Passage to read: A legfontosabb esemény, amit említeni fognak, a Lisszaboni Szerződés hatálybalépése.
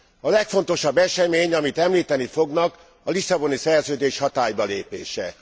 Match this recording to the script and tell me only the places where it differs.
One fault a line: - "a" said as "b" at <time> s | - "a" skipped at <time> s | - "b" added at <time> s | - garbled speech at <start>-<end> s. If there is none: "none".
none